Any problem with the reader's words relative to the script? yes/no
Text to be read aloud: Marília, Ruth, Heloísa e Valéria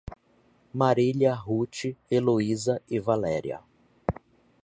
no